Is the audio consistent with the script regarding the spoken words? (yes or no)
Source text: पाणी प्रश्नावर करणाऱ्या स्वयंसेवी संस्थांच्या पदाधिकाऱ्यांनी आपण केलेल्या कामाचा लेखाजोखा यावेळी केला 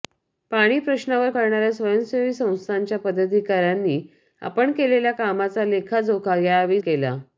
yes